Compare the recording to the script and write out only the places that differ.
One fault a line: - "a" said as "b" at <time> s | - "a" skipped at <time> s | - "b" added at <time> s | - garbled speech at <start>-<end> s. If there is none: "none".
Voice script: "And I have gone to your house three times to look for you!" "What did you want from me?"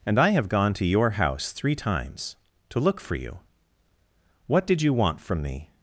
none